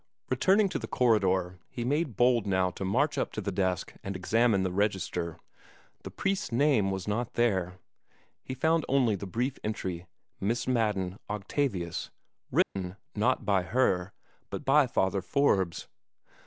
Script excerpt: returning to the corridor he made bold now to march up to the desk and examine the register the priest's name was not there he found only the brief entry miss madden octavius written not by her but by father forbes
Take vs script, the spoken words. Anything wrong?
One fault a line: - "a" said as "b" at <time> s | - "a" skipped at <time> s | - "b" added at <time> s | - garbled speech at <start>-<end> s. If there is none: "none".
none